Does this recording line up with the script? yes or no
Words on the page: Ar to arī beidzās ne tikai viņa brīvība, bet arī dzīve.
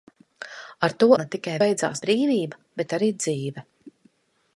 no